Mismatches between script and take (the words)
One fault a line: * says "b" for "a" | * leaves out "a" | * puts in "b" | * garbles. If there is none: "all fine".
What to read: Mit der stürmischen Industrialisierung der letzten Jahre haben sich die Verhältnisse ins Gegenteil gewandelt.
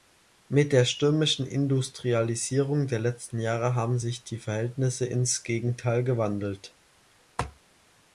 all fine